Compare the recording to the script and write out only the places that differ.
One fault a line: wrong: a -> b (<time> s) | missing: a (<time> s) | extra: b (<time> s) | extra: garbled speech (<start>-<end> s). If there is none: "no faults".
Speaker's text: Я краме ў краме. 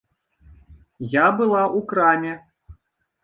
wrong: краме -> была (1.4 s)